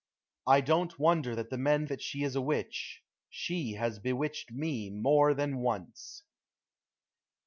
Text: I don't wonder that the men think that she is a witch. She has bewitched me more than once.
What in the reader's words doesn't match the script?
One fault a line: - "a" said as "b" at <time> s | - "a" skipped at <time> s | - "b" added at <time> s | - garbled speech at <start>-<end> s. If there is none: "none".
- "think" skipped at 1.8 s